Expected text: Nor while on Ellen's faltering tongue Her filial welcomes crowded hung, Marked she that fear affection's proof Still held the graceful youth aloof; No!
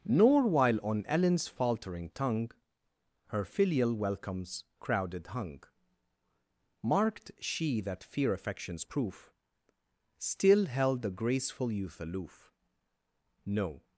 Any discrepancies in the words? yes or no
no